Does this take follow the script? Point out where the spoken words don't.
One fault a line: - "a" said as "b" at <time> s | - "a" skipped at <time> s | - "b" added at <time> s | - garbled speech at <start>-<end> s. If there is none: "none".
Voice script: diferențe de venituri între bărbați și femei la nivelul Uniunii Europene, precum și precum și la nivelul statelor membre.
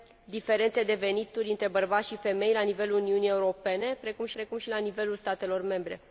none